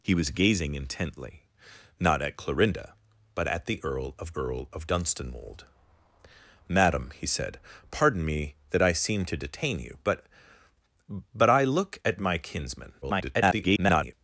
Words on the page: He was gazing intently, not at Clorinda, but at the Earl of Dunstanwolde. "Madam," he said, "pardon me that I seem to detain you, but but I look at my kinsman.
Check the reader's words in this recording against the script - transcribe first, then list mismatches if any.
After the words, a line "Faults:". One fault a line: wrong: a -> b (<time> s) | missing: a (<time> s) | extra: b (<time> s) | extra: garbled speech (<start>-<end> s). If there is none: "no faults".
He was gazing intently, not at Clorinda, but at the Earl of Earl of Dunstanwolde. "Madam," he said, "pardon me that I seem to detain you, but but I look at my kinsman. [garbled]
Faults:
extra: Earl of (4.4 s)
extra: garbled speech (13.0-14.1 s)